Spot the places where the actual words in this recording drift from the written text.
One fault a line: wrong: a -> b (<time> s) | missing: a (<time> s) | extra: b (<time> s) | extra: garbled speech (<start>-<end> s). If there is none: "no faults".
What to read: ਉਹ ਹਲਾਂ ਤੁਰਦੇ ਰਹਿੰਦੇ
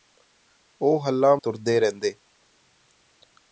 no faults